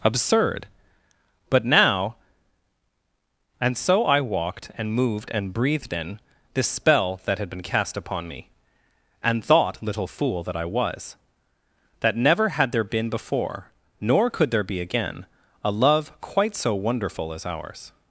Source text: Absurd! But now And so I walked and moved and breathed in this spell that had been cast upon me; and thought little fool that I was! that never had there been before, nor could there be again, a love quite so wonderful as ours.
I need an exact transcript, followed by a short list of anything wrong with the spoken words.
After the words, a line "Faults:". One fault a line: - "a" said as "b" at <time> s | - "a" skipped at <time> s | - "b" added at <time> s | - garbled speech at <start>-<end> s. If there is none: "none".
Absurd! But now And so I walked and moved and breathed in this spell that had been cast upon me; and thought little fool that I was! that never had there been before, nor could there be again, a love quite so wonderful as ours.
Faults:
none